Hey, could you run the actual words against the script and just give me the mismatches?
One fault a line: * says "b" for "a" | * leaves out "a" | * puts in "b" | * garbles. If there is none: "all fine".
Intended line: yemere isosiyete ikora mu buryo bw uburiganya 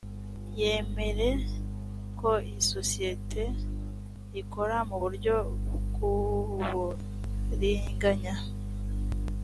* puts in "ko"